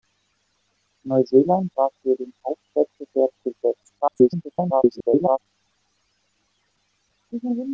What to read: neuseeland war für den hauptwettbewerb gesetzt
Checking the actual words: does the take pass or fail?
fail